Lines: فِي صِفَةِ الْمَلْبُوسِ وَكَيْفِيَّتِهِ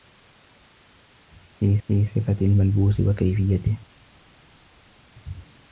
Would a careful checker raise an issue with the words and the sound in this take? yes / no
yes